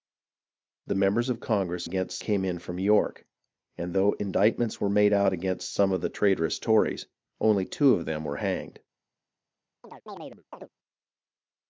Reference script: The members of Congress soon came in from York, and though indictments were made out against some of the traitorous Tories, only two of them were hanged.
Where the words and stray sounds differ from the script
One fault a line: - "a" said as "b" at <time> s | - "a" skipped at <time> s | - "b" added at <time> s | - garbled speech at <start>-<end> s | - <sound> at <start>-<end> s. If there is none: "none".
- "soon" said as "against" at 1.8 s
- chirp at 9.8-10.7 s